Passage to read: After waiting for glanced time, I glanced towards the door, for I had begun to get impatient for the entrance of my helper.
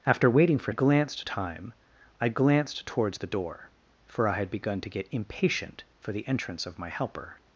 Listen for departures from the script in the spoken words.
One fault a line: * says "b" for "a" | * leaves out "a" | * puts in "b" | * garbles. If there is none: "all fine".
all fine